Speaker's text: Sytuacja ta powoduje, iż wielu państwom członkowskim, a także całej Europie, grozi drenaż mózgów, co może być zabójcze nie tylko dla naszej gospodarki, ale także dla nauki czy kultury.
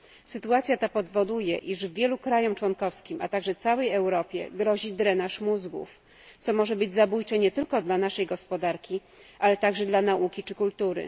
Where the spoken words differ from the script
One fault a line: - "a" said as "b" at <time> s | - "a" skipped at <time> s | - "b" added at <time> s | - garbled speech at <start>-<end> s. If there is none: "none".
none